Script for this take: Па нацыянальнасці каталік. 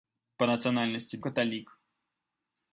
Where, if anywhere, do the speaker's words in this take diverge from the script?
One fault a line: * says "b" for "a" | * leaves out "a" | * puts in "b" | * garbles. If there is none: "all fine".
all fine